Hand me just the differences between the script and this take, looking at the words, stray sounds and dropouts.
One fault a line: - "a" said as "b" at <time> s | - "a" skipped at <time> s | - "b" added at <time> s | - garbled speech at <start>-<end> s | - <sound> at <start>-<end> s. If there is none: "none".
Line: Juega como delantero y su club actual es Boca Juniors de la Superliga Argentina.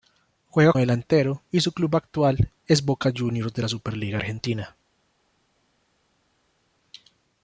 - "como" skipped at 0.7 s